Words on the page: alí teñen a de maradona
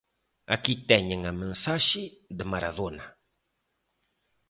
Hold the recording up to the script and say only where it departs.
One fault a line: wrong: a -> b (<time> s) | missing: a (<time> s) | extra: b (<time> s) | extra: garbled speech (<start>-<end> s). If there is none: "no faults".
wrong: alí -> aquí (0.6 s)
extra: mensaxe (1.4 s)